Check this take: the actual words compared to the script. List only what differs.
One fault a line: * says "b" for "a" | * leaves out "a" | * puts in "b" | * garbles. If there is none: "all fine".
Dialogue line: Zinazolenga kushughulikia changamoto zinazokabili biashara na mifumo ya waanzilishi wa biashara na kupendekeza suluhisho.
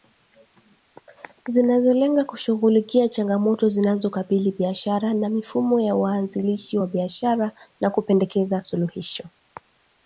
all fine